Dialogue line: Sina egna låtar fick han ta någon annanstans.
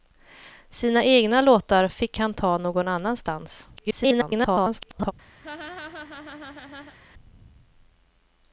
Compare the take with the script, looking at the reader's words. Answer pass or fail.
fail